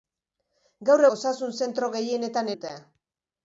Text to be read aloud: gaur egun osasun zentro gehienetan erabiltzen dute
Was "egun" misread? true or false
true